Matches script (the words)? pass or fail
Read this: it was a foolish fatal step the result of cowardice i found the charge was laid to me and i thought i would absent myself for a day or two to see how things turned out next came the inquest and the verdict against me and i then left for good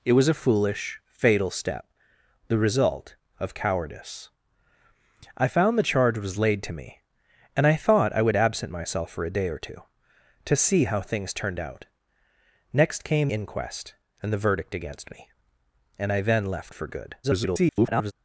fail